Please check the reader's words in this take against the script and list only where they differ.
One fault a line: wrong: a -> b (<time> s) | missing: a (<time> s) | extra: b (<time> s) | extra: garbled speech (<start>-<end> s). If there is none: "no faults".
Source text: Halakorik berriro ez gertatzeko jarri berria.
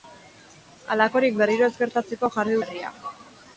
no faults